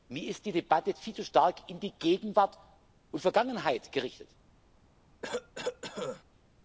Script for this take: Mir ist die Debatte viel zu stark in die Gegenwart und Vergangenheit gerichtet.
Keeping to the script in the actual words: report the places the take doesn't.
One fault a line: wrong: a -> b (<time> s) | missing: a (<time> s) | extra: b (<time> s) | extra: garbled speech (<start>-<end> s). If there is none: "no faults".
no faults